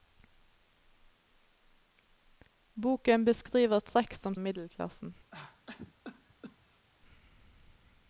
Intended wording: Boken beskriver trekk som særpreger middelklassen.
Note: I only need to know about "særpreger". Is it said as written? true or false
false